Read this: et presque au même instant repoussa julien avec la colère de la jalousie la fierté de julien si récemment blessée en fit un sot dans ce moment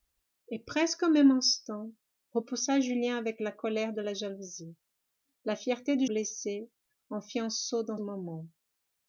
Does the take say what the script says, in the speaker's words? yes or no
no